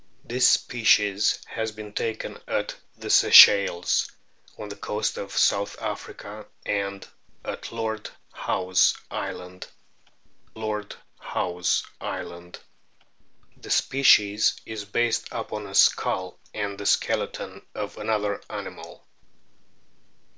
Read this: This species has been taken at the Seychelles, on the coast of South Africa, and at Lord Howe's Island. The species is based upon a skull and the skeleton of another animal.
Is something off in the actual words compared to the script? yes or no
yes